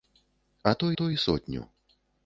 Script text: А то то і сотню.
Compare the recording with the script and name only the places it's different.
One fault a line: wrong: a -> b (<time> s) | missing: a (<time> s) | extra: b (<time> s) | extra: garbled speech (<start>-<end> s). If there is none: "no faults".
no faults